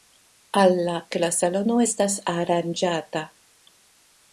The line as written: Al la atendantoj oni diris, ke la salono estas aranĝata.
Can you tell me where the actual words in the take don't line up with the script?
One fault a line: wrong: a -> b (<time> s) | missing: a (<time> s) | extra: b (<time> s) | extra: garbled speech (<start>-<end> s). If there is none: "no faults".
missing: atendantoj oni diris (0.9 s)